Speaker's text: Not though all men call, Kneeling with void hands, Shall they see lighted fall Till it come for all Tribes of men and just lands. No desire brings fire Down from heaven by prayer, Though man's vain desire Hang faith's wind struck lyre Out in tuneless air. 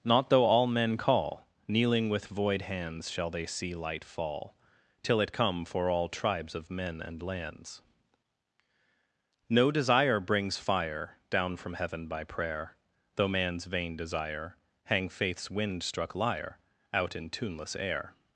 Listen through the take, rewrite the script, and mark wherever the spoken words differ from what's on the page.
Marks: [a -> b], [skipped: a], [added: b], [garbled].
Not though all men call, Kneeling with void hands, Shall they see [lighted -> light] fall Till it come for all Tribes of men and [skipped: just] lands. No desire brings fire Down from heaven by prayer, Though man's vain desire Hang faith's wind struck lyre Out in tuneless air.